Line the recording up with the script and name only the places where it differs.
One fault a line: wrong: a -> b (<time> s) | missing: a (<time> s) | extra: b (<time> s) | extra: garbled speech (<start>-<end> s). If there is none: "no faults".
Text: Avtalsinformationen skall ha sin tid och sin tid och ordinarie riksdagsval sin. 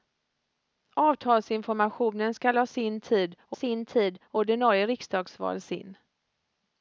no faults